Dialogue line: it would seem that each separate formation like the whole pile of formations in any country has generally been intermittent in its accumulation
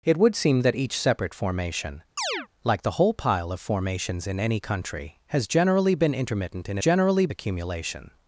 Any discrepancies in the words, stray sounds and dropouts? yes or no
yes